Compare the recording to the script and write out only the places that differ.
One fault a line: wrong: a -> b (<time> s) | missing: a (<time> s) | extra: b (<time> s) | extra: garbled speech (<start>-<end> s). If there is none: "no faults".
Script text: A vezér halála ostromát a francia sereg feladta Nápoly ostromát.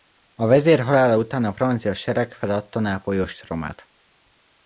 wrong: ostromát -> után (1.1 s)